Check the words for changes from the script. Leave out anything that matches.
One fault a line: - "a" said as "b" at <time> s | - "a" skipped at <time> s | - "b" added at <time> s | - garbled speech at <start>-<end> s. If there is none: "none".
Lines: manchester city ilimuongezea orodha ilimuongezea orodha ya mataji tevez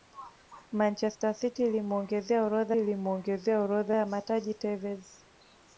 none